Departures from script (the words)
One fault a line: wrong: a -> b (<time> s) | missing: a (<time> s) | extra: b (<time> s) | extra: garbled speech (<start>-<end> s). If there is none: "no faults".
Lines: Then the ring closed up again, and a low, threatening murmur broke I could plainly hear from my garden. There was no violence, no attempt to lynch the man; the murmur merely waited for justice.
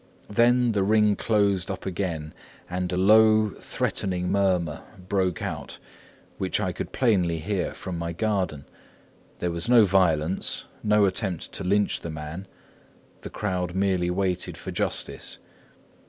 extra: out which (5.4 s)
wrong: murmur -> crowd (13.3 s)